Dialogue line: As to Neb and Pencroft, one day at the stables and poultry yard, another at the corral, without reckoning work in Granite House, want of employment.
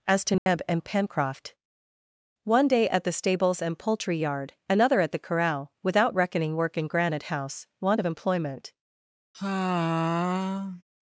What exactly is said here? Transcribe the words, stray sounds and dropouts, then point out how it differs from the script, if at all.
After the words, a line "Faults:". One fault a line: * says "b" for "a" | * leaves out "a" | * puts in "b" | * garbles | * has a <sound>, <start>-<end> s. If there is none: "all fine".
As to Neb and Pencroft, one day at the stables and poultry yard, another at the corral, without reckoning work in Granite House, want of employment.
Faults:
* has a dropout, 0.4-0.5 s
* has a sigh, 9.3-10.8 s